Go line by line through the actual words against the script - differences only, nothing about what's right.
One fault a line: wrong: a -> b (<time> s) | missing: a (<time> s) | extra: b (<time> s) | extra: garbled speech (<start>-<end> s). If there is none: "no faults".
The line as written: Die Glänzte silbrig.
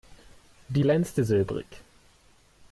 no faults